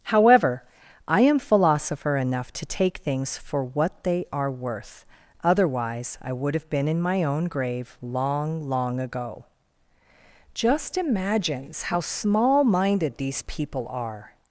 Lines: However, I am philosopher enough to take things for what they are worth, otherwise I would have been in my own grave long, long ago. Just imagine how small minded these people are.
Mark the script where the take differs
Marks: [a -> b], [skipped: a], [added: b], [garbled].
However, I am philosopher enough to take things for what they are worth, otherwise I would have been in my own grave long, long ago. Just [imagine -> imagines] how small minded these people are.